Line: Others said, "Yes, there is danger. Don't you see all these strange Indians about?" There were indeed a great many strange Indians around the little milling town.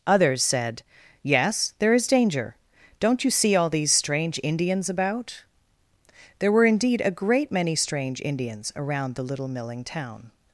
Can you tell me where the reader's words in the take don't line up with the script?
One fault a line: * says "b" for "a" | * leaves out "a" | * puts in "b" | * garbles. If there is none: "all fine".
all fine